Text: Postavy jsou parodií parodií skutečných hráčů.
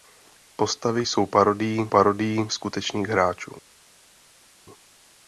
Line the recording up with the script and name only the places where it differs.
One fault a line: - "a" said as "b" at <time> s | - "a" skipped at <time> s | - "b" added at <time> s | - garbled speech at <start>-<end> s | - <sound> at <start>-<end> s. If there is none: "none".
none